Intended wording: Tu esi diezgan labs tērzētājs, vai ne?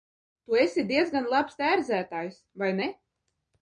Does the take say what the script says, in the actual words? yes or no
yes